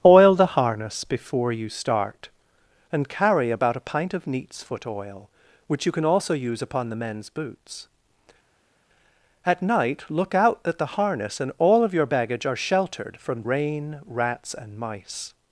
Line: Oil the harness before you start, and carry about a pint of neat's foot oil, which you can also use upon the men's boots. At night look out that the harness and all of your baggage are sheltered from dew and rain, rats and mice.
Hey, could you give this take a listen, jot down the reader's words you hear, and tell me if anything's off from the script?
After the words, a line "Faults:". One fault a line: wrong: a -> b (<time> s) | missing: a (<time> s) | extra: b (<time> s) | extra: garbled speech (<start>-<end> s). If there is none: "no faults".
Oil the harness before you start, and carry about a pint of neat's foot oil, which you can also use upon the men's boots. At night look out that the harness and all of your baggage are sheltered from rain, rats and mice.
Faults:
missing: dew and (13.4 s)